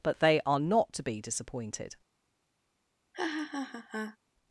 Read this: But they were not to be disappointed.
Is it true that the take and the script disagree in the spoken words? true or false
true